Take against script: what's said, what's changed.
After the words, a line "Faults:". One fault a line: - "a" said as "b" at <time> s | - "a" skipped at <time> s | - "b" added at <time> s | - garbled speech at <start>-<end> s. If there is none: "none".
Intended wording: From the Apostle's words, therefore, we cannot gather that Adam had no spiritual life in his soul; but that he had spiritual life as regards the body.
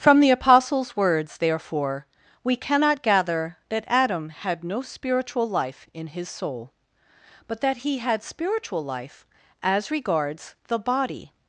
From the Apostle's words, therefore, we cannot gather that Adam had no spiritual life in his soul; but that he had spiritual life as regards the body.
Faults:
none